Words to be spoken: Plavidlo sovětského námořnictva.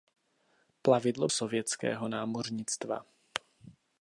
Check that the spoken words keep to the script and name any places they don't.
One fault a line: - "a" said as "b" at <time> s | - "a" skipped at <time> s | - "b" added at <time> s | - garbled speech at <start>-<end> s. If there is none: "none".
none